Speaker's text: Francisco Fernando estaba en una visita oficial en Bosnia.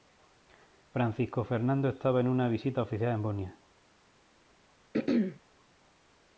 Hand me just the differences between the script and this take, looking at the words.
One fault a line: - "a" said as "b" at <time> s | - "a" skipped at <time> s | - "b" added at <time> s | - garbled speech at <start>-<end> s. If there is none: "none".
none